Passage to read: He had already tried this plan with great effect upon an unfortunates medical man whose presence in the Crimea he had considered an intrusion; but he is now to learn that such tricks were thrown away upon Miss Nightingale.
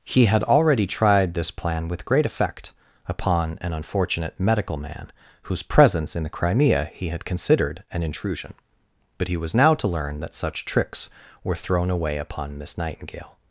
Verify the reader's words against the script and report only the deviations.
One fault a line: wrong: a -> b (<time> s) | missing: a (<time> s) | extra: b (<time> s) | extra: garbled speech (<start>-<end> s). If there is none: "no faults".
wrong: unfortunates -> unfortunate (3.7 s)
wrong: is -> was (9.4 s)